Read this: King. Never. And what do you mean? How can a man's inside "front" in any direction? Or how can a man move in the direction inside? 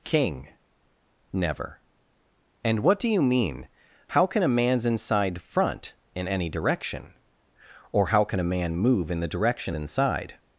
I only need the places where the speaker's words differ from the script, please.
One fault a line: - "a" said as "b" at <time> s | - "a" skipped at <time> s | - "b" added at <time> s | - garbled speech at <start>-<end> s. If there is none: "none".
none